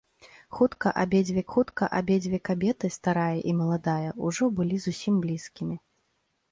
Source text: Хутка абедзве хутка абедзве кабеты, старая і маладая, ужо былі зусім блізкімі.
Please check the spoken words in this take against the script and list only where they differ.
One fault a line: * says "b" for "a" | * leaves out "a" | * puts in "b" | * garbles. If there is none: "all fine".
all fine